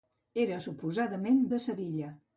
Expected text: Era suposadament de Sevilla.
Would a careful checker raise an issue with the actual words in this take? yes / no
no